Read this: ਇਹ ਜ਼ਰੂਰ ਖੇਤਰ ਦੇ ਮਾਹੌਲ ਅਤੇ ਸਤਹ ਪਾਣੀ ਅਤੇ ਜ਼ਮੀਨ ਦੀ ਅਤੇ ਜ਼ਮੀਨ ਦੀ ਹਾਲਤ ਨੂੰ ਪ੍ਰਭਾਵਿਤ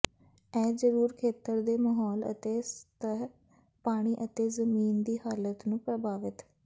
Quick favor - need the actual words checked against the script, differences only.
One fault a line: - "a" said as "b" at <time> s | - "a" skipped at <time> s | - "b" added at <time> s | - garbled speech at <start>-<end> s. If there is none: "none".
- "ਅਤੇ ਜ਼ਮੀਨ ਦੀ" skipped at 5.2 s